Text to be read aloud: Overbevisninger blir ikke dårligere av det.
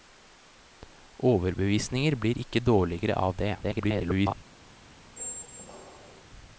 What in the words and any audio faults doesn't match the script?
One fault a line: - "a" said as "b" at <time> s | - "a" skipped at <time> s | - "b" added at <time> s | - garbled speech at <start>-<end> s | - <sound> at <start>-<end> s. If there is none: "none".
- garbled speech at 3.6-4.3 s
- squeak at 5.2-6.2 s